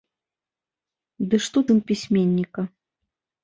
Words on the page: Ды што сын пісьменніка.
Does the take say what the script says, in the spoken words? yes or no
yes